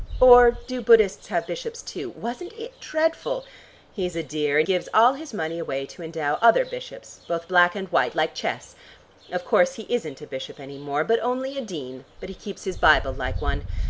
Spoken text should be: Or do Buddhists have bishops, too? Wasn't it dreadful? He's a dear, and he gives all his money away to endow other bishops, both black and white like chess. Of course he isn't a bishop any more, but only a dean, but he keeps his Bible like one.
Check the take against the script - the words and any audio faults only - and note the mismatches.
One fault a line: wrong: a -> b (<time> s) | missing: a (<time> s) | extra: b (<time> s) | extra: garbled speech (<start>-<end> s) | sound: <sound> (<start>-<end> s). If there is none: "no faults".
missing: he (4.7 s)